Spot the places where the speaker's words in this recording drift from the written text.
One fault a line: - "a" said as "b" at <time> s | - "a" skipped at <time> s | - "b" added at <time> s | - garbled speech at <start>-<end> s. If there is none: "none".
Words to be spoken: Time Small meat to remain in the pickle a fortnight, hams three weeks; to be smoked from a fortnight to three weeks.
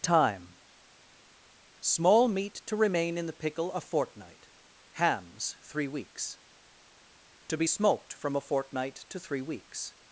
none